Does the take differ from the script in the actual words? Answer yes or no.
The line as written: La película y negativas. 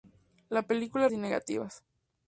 no